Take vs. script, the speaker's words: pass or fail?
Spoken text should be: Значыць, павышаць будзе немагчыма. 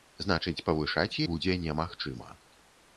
pass